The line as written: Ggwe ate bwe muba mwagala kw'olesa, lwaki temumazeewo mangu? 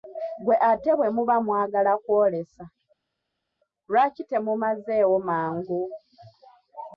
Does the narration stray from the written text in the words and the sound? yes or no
no